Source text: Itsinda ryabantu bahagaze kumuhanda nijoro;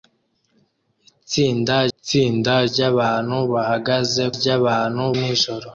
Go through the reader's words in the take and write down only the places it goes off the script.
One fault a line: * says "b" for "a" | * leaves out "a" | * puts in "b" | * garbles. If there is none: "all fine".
* puts in "itsinda"
* says "ryabantu" for "kumuhanda"